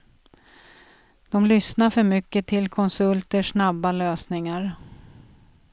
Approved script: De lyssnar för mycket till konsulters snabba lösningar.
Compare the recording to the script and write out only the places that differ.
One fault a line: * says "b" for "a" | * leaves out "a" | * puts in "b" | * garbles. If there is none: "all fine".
all fine